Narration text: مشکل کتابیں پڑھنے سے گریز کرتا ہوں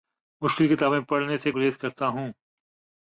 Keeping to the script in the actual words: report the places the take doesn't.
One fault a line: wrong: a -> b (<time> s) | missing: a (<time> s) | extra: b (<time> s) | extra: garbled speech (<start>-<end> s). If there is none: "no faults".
no faults